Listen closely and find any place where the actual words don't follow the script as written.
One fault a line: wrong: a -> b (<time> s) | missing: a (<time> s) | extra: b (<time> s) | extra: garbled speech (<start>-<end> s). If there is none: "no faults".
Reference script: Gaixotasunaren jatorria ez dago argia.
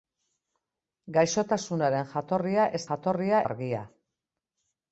wrong: dago -> jatorria (2.9 s)